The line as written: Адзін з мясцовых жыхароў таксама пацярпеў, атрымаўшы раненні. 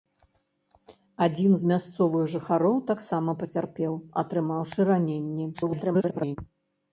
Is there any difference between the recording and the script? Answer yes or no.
yes